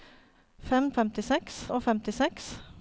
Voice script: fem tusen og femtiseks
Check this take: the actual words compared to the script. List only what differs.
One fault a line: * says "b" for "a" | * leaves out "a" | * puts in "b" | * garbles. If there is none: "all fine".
* says "femtiseks" for "tusen"